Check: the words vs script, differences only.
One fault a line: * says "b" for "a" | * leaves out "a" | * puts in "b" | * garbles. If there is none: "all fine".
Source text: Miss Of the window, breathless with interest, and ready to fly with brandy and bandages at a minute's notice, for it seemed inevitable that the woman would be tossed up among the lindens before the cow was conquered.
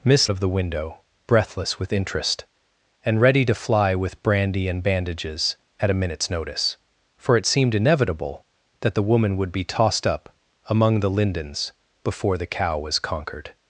all fine